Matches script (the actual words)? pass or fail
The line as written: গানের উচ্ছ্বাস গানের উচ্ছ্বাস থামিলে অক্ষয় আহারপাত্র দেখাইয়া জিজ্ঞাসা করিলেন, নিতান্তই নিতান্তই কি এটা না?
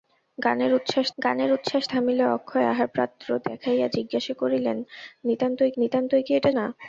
pass